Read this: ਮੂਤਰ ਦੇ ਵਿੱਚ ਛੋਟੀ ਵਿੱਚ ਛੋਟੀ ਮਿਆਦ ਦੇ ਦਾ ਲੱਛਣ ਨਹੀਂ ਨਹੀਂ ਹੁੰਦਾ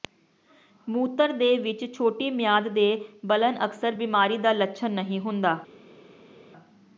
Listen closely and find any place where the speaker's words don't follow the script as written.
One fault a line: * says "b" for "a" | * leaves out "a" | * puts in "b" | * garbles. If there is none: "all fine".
* says "ਮਿਆਦ ਦੇ ਬਲਨ ਅਕਸਰ ਬਿਮਾਰੀ" for "ਵਿੱਚ ਛੋਟੀ ਮਿਆਦ ਦੇ"
* leaves out "ਨਹੀਂ"